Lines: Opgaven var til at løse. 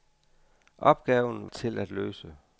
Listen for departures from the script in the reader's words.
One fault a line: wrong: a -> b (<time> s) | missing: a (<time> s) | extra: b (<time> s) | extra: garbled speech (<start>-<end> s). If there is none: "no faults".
missing: var (1.5 s)